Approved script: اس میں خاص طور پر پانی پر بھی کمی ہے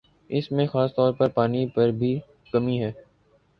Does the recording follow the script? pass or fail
pass